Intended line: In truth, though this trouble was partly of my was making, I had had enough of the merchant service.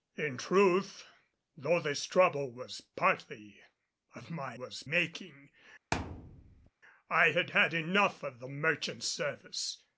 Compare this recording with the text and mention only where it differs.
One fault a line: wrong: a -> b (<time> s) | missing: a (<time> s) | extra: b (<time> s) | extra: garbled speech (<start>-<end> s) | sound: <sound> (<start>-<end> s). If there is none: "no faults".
sound: thud (5.9-6.7 s)